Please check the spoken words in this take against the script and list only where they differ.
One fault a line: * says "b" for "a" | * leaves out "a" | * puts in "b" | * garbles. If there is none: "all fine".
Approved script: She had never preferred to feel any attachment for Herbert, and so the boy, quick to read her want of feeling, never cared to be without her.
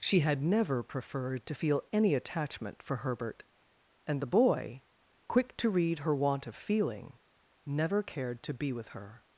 * leaves out "so"
* says "with" for "without"